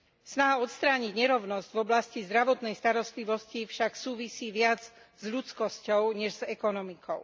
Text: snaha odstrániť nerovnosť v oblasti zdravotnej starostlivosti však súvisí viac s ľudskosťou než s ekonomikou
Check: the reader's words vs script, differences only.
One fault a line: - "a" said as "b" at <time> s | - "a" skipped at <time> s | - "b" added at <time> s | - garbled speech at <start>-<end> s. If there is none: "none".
none